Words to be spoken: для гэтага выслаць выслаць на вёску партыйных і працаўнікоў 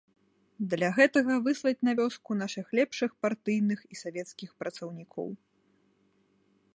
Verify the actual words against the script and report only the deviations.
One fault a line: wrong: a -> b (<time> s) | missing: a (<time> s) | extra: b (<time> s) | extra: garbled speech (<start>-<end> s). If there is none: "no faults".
missing: выслаць (1.8 s)
extra: нашых лепшых (2.4 s)
extra: савецкіх (4.0 s)